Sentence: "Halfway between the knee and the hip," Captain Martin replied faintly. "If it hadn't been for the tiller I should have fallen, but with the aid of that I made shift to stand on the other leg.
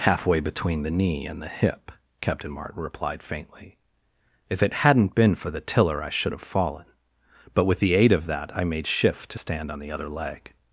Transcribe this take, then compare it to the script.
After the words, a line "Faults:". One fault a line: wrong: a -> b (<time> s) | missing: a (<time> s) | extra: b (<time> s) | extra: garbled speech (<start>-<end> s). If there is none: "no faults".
"Halfway between the knee and the hip," Captain Martin replied faintly. "If it hadn't been for the tiller I should have fallen, but with the aid of that I made shift to stand on the other leg.
Faults:
no faults